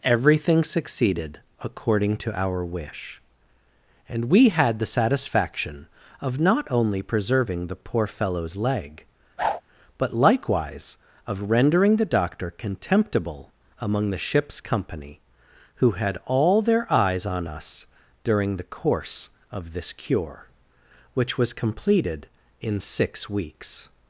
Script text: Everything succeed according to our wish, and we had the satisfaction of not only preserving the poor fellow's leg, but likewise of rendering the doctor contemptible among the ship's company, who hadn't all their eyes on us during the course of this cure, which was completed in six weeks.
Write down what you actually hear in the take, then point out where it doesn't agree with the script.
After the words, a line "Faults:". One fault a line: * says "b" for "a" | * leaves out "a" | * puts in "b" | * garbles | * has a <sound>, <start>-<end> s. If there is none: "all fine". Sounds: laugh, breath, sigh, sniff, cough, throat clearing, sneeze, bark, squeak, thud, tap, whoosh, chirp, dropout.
Everything succeeded according to our wish, and we had the satisfaction of not only preserving the poor fellow's leg, but likewise of rendering the doctor contemptible among the ship's company, who had all their eyes on us during the course of this cure, which was completed in six weeks.
Faults:
* says "succeeded" for "succeed"
* has a whoosh, 9.4-9.6 s
* says "had" for "hadn't"